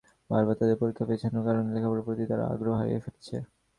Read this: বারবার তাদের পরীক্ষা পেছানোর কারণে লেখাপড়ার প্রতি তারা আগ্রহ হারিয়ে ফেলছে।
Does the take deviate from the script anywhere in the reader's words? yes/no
no